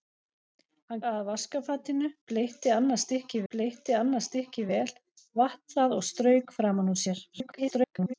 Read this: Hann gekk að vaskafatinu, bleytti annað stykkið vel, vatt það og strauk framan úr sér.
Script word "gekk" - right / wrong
wrong